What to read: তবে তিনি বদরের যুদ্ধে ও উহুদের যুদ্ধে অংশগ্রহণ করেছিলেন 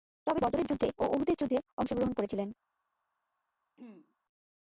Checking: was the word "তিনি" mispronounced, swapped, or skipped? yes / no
yes